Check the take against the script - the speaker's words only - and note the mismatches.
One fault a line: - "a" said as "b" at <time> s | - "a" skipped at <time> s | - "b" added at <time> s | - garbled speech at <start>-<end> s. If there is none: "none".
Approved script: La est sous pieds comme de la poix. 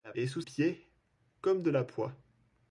none